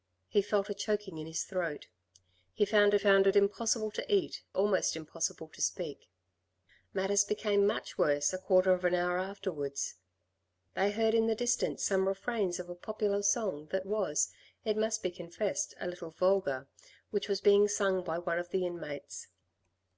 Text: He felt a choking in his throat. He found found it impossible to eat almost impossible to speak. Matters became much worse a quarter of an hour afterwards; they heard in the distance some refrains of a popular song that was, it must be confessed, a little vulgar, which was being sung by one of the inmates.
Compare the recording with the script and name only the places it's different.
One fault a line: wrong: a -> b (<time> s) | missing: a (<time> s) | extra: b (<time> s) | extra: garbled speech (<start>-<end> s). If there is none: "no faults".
no faults